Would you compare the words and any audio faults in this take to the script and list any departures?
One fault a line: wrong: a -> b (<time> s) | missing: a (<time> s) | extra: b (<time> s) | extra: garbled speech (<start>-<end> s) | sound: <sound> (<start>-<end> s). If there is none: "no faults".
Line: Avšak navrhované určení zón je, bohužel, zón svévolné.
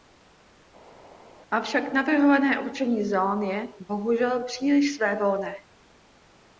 wrong: zón -> příliš (4.4 s)